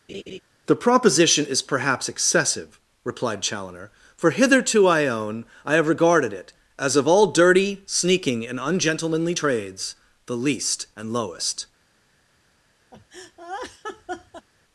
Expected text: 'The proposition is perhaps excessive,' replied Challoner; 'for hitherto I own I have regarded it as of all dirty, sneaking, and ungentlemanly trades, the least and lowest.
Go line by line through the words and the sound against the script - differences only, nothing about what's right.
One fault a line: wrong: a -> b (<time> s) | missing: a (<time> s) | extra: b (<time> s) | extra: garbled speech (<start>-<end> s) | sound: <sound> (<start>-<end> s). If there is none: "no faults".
sound: laugh (0.1-0.4 s)
sound: laugh (12.9-14.5 s)